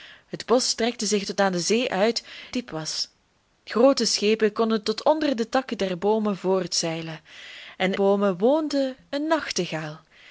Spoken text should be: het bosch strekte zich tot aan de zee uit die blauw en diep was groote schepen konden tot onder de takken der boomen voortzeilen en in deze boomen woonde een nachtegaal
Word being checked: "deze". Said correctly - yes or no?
no